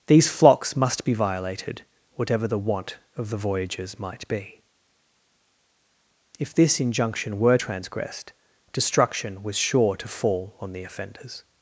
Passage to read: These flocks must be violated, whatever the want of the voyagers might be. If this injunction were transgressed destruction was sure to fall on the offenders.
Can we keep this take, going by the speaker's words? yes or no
yes